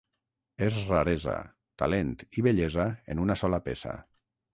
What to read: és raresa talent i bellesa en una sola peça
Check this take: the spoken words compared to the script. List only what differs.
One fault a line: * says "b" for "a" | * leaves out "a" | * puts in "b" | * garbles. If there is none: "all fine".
all fine